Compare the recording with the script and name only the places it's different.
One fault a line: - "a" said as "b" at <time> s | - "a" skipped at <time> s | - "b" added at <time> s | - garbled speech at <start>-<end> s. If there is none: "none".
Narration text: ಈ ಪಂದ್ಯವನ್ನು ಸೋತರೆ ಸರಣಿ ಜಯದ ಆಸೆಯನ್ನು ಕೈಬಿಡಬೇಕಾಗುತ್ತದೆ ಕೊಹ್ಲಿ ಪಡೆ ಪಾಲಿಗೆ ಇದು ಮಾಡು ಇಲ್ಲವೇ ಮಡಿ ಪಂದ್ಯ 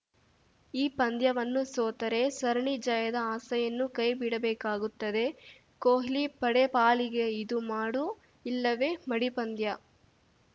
none